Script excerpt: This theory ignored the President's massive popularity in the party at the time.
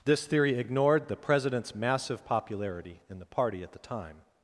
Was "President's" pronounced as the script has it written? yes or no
yes